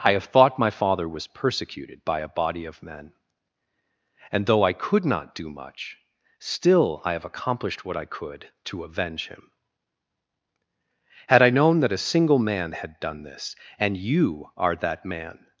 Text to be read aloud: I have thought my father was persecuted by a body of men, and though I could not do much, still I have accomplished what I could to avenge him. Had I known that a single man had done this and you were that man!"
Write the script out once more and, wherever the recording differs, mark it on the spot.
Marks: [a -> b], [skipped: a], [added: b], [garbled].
I have thought my father was persecuted by a body of men, and though I could not do much, still I have accomplished what I could to avenge him. Had I known that a single man had done this and you [were -> are] that man!"